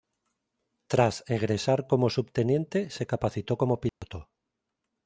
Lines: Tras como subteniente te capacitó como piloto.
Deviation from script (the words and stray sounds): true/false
true